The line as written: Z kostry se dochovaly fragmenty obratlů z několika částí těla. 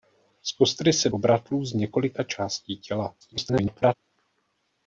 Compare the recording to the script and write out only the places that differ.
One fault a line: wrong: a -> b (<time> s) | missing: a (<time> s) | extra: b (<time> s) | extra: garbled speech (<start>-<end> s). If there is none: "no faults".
missing: dochovaly fragmenty (1.1 s)
extra: garbled speech (3.2-3.9 s)